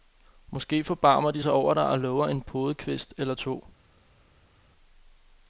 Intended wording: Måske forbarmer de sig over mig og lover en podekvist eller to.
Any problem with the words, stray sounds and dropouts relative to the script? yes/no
yes